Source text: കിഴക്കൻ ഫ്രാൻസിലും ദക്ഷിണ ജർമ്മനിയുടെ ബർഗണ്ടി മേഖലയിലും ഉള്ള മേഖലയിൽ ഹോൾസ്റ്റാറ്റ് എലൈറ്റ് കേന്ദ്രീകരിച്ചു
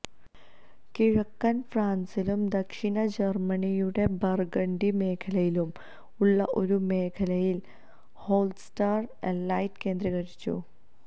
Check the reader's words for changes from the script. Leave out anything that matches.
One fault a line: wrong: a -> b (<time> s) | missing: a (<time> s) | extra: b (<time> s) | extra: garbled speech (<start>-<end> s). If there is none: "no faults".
extra: ഒരു (6.6 s)